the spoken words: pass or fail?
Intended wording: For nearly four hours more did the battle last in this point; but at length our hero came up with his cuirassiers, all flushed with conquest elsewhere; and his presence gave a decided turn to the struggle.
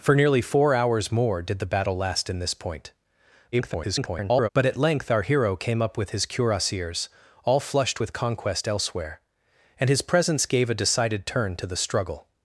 fail